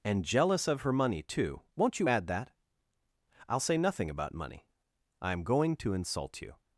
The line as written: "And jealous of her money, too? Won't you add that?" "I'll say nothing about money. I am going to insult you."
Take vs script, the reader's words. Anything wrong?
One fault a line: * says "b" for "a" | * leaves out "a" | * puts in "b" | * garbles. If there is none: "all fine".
all fine